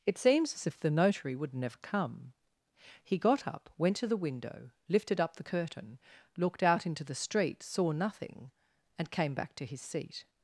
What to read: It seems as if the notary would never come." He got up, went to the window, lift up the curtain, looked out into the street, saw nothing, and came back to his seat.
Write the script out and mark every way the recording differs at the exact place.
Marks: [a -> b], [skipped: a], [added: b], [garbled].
It seems as if the notary would never come." He got up, went to the window, [lift -> lifted] up the curtain, looked out into the street, saw nothing, and came back to his seat.